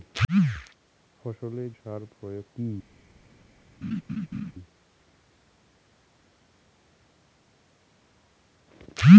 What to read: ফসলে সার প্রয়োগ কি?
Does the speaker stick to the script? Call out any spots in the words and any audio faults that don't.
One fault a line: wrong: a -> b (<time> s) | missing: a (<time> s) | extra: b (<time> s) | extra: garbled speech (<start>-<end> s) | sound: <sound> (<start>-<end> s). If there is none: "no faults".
sound: laugh (3.8-4.5 s)